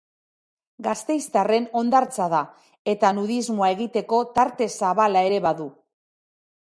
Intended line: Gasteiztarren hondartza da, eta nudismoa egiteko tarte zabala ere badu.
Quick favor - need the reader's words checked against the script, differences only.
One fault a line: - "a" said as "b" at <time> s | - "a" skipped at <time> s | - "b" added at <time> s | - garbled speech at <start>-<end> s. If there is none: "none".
none